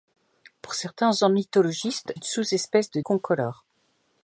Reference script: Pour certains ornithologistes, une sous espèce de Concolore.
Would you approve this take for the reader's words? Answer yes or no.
yes